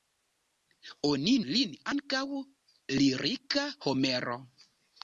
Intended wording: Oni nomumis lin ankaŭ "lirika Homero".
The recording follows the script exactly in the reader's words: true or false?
false